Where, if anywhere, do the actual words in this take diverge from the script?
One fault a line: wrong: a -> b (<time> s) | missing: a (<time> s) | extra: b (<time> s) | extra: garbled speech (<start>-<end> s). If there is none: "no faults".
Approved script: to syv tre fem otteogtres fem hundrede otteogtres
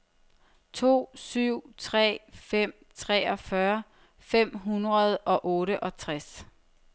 wrong: otteogtres -> treogfyrre (3.0 s)
extra: og (5.2 s)